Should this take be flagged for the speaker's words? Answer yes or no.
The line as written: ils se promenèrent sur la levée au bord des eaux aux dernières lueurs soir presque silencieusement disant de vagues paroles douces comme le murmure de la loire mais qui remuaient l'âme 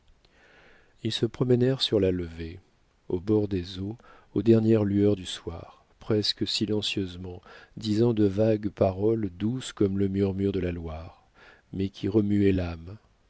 yes